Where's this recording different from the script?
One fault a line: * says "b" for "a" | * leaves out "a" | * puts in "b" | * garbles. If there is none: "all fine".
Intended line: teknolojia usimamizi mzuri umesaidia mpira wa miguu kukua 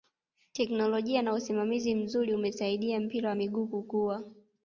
* puts in "na"